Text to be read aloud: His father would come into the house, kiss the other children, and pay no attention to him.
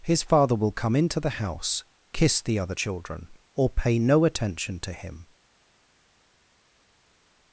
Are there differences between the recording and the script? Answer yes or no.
yes